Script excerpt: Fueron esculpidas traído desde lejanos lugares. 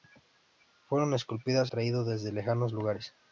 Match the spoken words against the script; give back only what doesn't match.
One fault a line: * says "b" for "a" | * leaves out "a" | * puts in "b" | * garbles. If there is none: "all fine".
all fine